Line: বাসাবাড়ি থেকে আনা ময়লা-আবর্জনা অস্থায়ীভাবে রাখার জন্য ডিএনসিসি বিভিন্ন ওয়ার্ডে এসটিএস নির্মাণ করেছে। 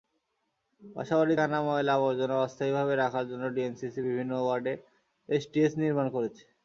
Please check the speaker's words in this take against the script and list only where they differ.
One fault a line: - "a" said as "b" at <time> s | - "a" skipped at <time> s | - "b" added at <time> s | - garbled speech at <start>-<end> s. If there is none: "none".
- "থেকে" skipped at 1.4 s